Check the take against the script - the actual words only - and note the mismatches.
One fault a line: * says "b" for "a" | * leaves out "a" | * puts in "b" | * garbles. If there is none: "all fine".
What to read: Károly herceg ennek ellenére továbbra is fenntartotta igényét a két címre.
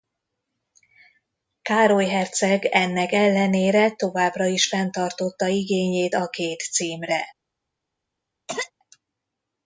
all fine